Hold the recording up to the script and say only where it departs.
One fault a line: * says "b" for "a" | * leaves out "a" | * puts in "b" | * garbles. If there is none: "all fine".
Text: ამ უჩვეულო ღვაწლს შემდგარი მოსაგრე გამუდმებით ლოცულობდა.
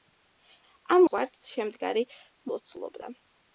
* leaves out "უჩვეულო"
* leaves out "მოსაგრე გამუდმებით"